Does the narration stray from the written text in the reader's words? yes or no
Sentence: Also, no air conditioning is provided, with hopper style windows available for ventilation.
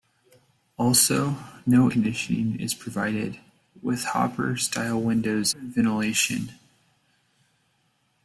yes